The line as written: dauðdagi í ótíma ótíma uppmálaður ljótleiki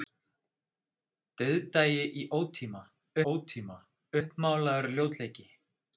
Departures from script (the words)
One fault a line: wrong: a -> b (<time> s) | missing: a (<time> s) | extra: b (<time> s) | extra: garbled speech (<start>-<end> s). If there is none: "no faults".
no faults